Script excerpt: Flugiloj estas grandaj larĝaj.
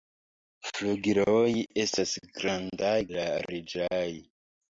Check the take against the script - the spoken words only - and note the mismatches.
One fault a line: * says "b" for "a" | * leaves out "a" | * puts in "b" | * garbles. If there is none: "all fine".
all fine